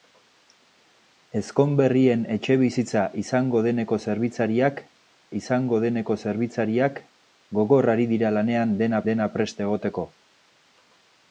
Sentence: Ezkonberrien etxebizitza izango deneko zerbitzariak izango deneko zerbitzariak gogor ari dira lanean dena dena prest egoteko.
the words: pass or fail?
pass